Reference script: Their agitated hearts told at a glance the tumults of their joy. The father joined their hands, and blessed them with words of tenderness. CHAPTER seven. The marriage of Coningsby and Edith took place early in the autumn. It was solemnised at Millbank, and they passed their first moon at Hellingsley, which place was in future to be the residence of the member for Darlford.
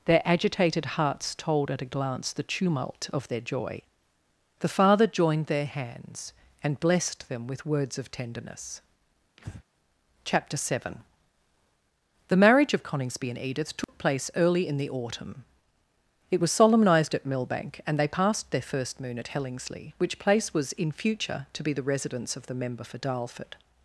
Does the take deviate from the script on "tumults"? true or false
true